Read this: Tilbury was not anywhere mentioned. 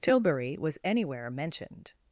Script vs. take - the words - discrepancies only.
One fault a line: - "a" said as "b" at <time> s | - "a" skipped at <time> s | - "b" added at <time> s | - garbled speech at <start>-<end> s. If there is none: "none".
- "not" skipped at 0.8 s